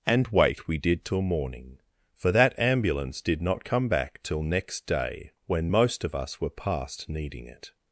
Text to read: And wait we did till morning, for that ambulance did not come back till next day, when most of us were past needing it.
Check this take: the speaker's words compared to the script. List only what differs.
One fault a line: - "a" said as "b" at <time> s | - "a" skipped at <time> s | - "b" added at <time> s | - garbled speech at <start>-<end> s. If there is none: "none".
none